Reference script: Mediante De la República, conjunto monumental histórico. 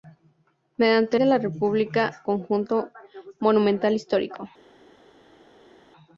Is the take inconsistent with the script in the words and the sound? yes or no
no